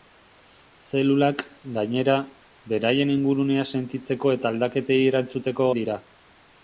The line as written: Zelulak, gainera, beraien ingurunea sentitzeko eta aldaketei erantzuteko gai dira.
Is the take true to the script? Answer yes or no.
no